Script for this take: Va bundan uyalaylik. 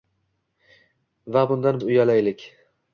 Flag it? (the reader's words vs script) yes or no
no